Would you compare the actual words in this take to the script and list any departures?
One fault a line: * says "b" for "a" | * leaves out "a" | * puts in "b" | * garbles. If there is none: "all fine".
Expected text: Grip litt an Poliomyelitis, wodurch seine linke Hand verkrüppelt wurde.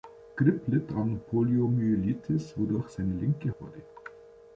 * leaves out "Hand verkrüppelt"